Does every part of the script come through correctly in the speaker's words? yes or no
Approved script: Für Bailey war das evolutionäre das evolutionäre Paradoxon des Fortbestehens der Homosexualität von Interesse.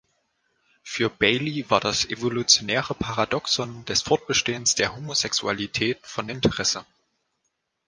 no